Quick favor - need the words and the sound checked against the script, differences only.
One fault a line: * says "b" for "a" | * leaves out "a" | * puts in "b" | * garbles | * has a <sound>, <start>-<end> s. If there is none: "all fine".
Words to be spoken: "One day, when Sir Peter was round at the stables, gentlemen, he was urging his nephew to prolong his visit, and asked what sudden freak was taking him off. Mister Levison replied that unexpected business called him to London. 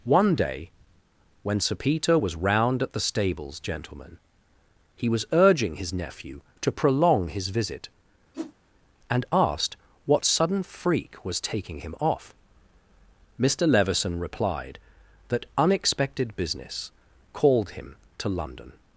* has a whoosh, 8.3-8.5 s